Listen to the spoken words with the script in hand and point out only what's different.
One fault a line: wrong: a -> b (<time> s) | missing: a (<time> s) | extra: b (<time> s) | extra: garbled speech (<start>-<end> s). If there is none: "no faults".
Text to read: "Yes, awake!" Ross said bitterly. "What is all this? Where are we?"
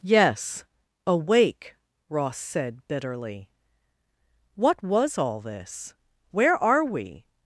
wrong: is -> was (4.8 s)